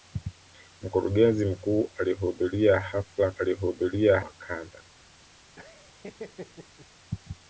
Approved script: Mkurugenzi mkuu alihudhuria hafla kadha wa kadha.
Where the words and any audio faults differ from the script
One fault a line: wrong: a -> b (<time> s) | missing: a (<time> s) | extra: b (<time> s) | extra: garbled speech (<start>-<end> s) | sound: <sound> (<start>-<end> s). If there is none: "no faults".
wrong: kadha -> alihudhuria (3.4 s)
sound: laugh (5.6-6.9 s)